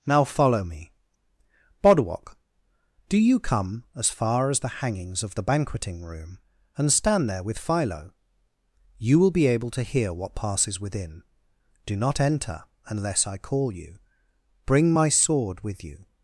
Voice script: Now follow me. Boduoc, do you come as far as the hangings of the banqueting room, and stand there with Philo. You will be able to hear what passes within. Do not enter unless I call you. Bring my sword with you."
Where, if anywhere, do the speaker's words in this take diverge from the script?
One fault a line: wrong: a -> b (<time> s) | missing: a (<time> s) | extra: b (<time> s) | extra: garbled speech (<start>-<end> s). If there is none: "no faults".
no faults